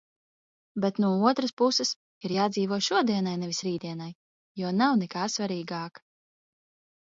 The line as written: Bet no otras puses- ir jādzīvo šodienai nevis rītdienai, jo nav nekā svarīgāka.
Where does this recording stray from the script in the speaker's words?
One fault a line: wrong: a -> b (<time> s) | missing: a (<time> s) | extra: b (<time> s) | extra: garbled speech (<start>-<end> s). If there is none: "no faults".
no faults